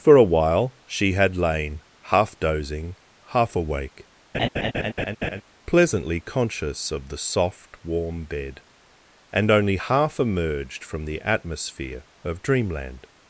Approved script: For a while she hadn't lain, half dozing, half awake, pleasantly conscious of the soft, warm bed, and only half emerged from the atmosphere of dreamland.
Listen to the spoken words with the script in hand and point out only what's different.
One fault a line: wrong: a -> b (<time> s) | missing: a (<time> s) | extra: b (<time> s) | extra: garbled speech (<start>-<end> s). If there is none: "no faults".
wrong: hadn't -> had (1.1 s)